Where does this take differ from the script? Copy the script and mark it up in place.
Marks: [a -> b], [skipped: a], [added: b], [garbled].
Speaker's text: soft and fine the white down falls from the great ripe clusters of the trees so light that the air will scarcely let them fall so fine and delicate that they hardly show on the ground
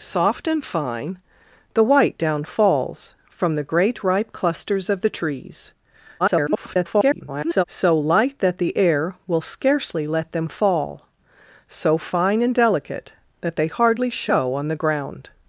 soft and fine the white down falls from the great ripe clusters of the trees [garbled] so light that the air will scarcely let them fall so fine and delicate that they hardly show on the ground